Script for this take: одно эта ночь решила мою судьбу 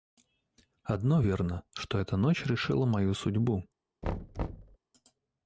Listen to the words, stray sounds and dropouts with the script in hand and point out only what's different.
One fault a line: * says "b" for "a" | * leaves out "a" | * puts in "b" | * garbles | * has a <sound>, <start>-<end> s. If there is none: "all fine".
* puts in "верно что"
* has a thud, 4.0-4.8 s